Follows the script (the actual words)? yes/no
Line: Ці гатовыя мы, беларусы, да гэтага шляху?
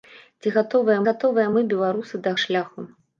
no